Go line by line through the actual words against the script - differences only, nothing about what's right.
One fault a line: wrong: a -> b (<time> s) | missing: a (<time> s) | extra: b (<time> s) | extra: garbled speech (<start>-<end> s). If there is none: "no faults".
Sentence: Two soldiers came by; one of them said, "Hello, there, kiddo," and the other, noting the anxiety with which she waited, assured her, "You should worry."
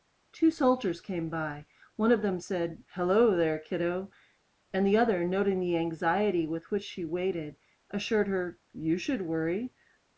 no faults